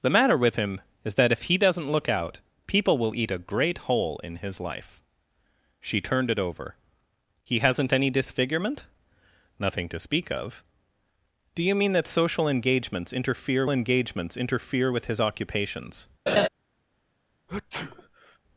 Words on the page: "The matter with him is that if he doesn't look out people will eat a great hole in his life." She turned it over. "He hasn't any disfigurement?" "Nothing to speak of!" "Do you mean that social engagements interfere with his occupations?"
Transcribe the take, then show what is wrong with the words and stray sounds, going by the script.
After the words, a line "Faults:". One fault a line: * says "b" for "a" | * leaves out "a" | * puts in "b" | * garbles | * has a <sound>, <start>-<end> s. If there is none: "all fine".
"The matter with him is that if he doesn't look out people will eat a great hole in his life." She turned it over. "He hasn't any disfigurement?" "Nothing to speak of!" "Do you mean that social engagements interfere engagements interfere with his occupations?"
Faults:
* puts in "engagements interfere"
* has a laugh, 16.3-16.5 s
* has a sneeze, 17.5-18.4 s